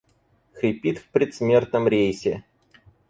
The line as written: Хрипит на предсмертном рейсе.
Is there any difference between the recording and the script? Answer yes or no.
yes